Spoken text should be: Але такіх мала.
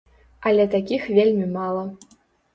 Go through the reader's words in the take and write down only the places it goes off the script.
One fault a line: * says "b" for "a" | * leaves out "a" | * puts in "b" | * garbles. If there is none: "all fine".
* puts in "вельмі"